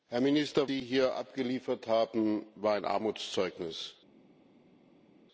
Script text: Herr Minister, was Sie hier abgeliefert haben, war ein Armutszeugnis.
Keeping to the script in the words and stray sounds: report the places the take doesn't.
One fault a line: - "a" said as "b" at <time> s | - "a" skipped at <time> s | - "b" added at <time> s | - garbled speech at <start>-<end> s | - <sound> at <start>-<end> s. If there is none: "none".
- "was" skipped at 0.7 s